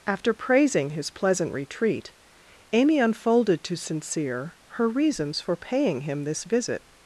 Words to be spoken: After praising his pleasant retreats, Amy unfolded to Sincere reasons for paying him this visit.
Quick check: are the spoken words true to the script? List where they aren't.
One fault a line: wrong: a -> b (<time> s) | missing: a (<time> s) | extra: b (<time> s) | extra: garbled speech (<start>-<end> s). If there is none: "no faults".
wrong: retreats -> retreat (1.5 s)
extra: her (4.7 s)